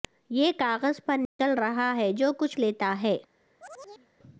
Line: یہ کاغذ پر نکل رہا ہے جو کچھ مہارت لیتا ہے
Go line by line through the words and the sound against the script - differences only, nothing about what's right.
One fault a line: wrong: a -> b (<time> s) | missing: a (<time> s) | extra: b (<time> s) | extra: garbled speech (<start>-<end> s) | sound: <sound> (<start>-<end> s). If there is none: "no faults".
sound: dropout (1.3-1.4 s)
missing: مہارت (2.6 s)
sound: chirp (3.6-4.1 s)